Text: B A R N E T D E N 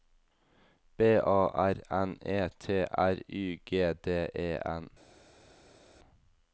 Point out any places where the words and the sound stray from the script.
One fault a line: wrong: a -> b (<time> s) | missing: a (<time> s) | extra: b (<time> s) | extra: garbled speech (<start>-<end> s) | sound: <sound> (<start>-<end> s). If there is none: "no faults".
extra: R Y G (3.0 s)